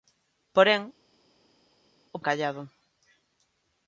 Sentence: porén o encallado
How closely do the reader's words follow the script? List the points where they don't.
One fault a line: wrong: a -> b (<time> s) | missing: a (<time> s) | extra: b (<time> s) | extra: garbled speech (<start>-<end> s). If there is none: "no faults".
no faults